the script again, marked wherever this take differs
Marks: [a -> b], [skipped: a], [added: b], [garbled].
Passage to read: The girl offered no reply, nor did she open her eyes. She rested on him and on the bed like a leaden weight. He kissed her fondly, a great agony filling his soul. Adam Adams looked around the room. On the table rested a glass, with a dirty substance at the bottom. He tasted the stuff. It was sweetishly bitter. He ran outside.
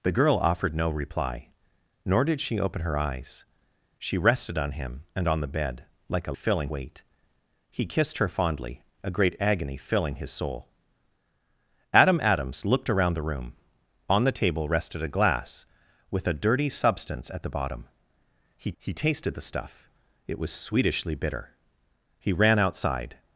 The girl offered no reply, nor did she open her eyes. She rested on him and on the bed like a [leaden -> filling] weight. He kissed her fondly, a great agony filling his soul. Adam Adams looked around the room. On the table rested a glass, with a dirty substance at the bottom. He [added: he] tasted the stuff. It was sweetishly bitter. He ran outside.